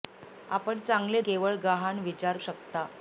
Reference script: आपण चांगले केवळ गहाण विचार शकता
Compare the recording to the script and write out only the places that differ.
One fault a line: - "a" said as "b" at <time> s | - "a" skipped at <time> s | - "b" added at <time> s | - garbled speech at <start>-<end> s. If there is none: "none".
none